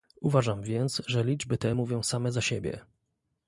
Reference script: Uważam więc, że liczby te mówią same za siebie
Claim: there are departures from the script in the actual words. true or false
false